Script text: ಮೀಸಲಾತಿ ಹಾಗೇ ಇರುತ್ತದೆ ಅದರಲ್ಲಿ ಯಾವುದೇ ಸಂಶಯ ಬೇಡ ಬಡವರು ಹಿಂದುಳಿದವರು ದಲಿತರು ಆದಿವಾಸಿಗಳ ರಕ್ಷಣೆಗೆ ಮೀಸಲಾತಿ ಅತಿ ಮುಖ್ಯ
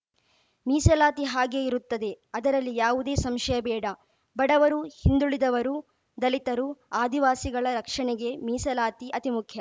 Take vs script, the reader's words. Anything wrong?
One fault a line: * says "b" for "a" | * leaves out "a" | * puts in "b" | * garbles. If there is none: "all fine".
all fine